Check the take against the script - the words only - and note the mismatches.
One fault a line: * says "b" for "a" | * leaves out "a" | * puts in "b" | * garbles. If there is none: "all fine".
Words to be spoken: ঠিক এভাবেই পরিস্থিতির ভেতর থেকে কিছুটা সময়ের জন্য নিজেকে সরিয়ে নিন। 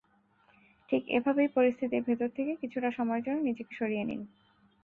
all fine